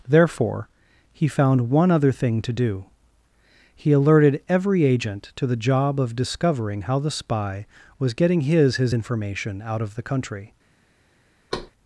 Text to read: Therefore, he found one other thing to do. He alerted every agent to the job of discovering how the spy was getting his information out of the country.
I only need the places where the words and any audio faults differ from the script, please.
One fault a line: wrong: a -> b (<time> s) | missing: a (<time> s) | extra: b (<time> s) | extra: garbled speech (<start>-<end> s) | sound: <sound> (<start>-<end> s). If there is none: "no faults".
extra: his (8.8 s)
sound: thud (11.5-11.7 s)